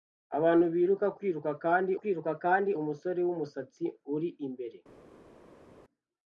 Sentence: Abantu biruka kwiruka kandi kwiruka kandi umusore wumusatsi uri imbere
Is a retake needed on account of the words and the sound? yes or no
no